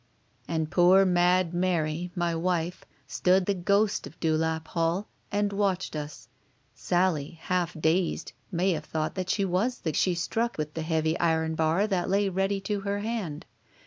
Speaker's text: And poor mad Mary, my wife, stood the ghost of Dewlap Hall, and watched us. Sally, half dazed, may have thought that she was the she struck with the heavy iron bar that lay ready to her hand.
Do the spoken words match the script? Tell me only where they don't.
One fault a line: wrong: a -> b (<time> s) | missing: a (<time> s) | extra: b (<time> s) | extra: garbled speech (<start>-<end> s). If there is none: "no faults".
no faults